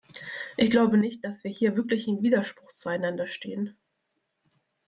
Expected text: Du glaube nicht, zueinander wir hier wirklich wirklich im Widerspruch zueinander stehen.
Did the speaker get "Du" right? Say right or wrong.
wrong